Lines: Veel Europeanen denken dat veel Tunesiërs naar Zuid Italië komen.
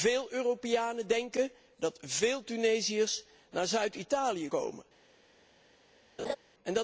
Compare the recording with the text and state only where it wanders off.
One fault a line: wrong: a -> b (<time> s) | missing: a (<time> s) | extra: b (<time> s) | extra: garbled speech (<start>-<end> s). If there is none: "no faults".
no faults